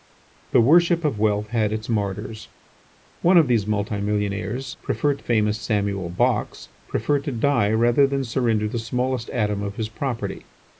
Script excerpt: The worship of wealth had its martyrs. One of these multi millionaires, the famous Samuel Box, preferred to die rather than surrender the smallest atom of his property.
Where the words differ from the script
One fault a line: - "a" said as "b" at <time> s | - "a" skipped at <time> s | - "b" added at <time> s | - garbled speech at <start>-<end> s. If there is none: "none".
- "the" said as "preferred" at 4.8 s